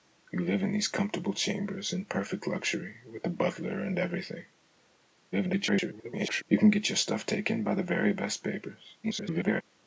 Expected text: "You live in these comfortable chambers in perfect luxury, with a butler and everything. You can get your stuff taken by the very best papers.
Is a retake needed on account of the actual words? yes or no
yes